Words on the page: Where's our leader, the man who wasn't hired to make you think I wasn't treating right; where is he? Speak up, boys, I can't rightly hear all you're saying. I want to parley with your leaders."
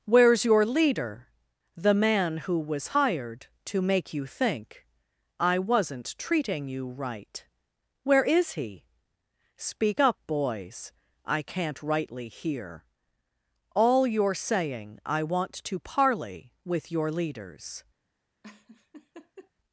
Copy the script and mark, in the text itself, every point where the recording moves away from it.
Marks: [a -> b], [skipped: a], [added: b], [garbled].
Where's [our -> your] leader, the man who [wasn't -> was] hired to make you think I wasn't treating [added: you] right; where is he? Speak up, boys, I can't rightly hear all you're saying. I want to parley with your leaders."